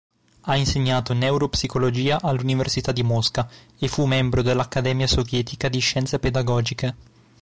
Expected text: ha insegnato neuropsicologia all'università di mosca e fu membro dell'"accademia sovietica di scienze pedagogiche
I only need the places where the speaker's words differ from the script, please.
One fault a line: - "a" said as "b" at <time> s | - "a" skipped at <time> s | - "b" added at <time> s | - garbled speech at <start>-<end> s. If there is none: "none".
none